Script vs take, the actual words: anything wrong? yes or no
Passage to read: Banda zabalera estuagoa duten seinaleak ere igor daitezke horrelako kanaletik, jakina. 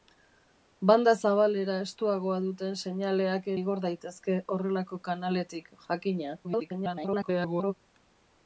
yes